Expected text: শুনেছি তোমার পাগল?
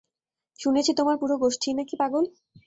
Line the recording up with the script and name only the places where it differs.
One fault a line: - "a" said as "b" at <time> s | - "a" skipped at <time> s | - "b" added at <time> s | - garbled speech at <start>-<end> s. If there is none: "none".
- "পুরো গোষ্ঠীই নাকি" added at 1.2 s